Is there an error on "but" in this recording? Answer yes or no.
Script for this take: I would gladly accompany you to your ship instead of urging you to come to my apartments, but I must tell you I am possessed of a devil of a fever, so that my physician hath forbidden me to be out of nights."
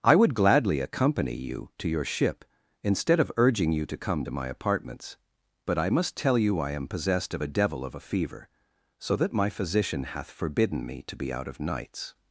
no